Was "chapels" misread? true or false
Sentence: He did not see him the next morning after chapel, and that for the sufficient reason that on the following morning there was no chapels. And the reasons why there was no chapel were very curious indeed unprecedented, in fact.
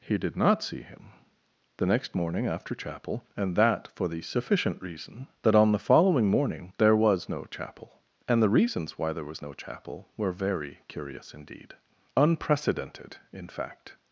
true